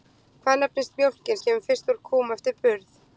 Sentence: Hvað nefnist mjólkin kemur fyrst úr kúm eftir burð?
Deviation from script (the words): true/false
false